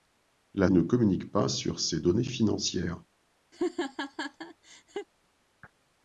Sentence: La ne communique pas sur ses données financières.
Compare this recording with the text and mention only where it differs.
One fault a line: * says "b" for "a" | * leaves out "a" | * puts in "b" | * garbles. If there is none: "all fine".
all fine